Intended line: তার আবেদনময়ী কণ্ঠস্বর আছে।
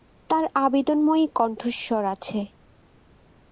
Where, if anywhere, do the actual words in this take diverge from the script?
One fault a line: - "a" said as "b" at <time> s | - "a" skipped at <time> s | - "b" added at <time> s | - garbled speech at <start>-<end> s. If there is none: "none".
none